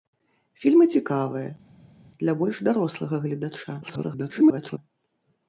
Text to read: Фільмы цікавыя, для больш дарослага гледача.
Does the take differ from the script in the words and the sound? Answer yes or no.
yes